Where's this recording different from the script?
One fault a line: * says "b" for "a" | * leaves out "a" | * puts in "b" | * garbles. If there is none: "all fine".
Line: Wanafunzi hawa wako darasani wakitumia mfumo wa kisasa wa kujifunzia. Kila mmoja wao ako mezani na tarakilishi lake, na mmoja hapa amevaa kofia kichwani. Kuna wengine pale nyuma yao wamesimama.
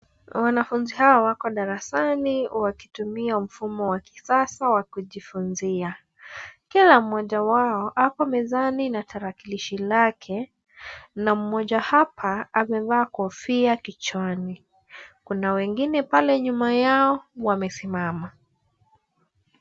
all fine